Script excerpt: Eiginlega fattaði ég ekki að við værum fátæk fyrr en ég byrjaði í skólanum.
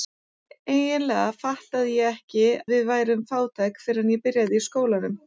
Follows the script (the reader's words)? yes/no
no